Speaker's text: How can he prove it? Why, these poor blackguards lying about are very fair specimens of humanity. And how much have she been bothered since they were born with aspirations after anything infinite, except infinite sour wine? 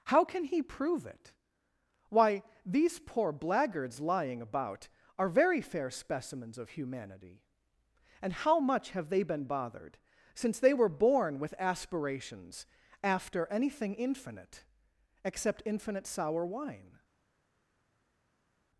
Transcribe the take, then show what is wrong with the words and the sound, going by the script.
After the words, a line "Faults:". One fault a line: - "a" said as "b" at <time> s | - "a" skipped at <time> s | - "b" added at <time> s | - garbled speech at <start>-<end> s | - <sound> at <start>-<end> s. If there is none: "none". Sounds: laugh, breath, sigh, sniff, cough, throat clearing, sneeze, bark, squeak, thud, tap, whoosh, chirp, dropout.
How can he prove it? Why, these poor blackguards lying about are very fair specimens of humanity. And how much have they been bothered since they were born with aspirations after anything infinite, except infinite sour wine?
Faults:
- "she" said as "they" at 9.1 s